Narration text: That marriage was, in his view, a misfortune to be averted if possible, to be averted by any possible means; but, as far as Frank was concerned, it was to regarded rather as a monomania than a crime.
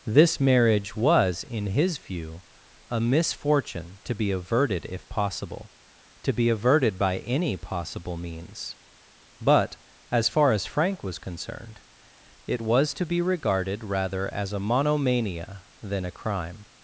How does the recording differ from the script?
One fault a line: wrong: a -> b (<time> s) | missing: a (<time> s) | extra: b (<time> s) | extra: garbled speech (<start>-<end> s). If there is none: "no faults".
wrong: That -> This (0.1 s)
extra: be (13.0 s)